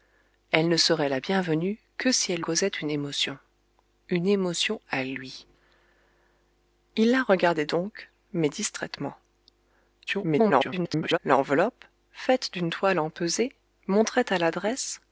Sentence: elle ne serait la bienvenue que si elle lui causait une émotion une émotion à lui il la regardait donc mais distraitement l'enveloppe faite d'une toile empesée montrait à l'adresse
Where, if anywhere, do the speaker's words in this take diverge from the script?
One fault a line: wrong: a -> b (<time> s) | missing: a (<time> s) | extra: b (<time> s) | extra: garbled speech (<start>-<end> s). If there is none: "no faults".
missing: lui (2.4 s)
extra: garbled speech (10.1-11.2 s)